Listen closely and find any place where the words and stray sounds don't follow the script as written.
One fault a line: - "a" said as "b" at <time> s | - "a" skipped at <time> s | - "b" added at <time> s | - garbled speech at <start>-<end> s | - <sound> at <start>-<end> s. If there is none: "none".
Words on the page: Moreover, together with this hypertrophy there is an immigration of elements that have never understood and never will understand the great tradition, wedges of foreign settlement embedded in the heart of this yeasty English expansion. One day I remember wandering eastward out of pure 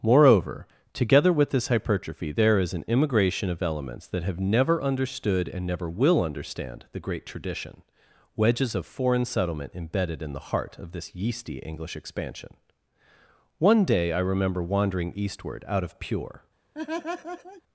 - laugh at 16.7-17.6 s